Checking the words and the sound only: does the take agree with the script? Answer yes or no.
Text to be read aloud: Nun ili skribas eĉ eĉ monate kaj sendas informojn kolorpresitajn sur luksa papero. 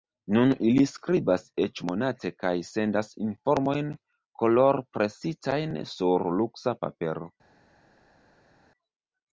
no